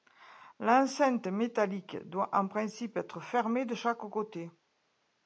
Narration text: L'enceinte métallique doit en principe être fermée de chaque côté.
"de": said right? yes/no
yes